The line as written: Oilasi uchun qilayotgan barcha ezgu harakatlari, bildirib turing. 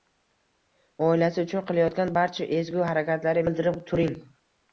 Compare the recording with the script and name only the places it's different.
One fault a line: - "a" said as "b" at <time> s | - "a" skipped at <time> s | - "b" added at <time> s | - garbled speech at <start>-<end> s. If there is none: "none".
none